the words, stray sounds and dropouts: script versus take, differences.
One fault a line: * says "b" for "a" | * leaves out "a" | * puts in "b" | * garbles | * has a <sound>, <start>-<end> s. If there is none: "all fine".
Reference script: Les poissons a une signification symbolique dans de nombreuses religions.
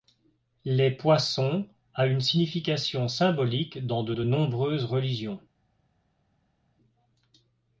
* puts in "de"